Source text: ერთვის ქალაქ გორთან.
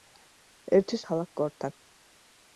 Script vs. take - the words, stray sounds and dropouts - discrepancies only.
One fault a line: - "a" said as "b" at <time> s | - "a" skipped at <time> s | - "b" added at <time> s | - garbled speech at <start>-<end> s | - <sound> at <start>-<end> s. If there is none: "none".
none